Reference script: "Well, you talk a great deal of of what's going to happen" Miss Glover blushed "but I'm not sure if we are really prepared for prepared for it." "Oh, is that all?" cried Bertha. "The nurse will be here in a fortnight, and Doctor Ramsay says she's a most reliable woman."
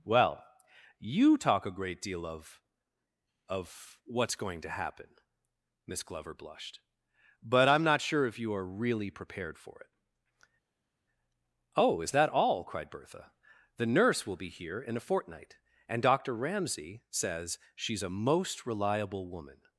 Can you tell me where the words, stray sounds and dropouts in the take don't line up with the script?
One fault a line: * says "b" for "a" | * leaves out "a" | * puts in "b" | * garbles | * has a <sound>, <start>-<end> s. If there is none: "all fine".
* says "you" for "we"
* leaves out "prepared for"